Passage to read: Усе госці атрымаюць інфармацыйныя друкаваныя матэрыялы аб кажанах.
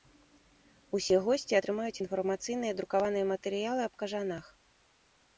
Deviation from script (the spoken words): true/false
false